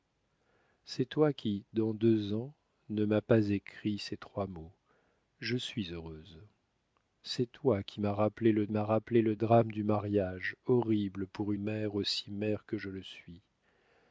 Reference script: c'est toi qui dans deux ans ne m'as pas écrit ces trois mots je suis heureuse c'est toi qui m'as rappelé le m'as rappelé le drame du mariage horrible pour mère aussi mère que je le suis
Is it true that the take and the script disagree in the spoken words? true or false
false